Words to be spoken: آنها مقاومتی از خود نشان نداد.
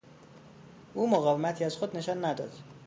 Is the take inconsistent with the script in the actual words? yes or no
yes